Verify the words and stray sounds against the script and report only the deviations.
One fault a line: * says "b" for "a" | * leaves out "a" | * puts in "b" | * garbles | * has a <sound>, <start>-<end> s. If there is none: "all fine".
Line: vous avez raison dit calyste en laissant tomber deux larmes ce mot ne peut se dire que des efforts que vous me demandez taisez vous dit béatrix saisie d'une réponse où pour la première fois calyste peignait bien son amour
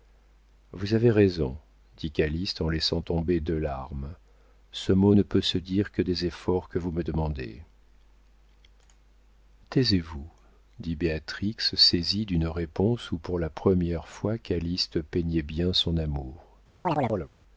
* has a chirp, 16.8-17.3 s